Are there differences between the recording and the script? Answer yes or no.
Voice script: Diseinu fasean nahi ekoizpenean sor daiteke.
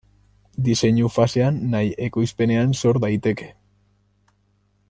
no